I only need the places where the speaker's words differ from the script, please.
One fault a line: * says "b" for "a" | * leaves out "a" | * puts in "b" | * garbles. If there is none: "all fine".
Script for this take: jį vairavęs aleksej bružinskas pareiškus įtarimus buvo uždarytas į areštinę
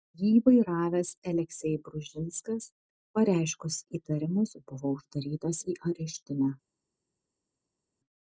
all fine